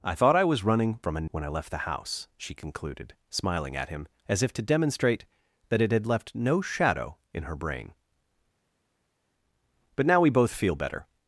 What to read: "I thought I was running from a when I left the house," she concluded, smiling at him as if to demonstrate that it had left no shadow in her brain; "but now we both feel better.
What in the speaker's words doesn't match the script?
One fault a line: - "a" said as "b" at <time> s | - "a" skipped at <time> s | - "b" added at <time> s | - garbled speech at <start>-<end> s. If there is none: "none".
none